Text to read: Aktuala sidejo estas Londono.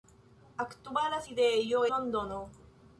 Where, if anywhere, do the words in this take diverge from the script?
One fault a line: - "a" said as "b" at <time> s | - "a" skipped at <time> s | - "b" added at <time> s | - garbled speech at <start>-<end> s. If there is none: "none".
- "estas" skipped at 1.8 s